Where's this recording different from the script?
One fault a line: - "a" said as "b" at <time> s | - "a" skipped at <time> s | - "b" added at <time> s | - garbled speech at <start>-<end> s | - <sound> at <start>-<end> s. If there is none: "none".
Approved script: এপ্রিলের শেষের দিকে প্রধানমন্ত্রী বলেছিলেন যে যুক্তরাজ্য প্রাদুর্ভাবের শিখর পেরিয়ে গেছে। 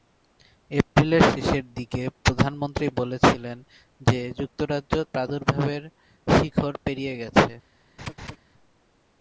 - laugh at 8.0-8.4 s